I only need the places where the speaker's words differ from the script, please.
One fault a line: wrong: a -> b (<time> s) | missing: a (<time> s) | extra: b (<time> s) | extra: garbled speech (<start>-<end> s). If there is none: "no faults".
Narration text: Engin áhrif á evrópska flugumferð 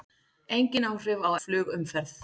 missing: evrópska (1.3 s)